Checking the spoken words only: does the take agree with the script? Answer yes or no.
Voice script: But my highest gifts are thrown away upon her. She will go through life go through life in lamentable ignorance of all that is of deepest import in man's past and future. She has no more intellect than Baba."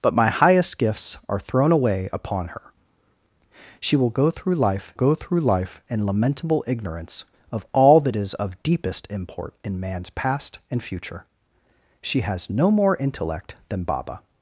yes